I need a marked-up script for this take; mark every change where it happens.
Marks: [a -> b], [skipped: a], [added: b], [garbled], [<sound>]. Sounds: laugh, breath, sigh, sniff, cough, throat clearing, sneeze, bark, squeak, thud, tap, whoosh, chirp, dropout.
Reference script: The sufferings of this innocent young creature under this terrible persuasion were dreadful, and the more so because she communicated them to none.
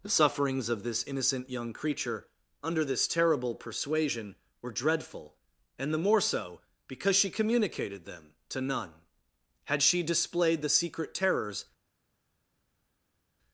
The sufferings of this innocent young creature under this terrible persuasion were dreadful, and the more so because she communicated them to none. [added: Had she displayed the secret terrors]